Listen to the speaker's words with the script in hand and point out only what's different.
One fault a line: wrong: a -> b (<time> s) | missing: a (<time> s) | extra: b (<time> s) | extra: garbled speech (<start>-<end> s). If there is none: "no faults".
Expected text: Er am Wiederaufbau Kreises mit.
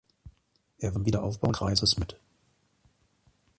no faults